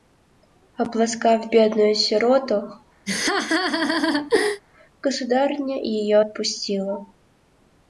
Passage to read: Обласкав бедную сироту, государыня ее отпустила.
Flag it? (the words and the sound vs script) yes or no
yes